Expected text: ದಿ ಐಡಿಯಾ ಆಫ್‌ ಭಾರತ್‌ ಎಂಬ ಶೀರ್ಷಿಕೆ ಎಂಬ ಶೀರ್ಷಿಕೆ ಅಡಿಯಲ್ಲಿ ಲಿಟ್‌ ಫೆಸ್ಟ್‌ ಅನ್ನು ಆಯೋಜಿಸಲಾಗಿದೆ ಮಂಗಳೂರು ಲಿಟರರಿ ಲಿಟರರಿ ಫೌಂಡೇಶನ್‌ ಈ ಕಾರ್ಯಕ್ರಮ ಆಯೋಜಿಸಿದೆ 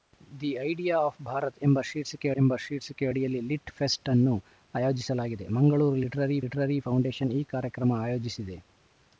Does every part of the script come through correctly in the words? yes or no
yes